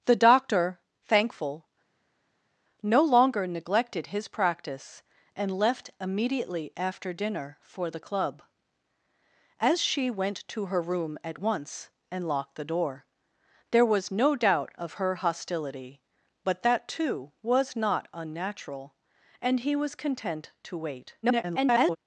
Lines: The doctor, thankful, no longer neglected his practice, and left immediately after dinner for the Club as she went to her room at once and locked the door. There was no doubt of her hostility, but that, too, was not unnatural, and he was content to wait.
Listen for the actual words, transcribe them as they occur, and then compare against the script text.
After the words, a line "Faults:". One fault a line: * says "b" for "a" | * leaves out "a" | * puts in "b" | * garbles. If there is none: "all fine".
The doctor, thankful, no longer neglected his practice, and left immediately after dinner for the Club as she went to her room at once and locked the door. There was no doubt of her hostility, but that, too, was not unnatural, and he was content to wait. [garbled]
Faults:
* garbles